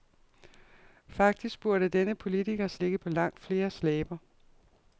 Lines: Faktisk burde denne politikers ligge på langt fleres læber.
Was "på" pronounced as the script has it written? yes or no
yes